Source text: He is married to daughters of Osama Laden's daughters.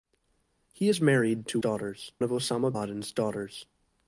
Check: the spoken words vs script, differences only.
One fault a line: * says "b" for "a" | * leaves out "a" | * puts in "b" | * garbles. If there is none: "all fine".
all fine